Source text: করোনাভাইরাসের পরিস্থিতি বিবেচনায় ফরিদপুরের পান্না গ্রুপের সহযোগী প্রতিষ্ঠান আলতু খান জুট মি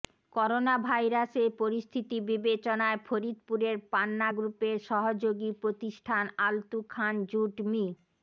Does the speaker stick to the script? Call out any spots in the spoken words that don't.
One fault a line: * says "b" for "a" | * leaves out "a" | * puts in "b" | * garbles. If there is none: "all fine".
all fine